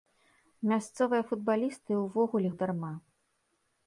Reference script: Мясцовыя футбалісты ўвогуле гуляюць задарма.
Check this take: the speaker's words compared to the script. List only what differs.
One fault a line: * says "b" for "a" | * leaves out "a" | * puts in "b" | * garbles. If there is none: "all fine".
* leaves out "гуляюць"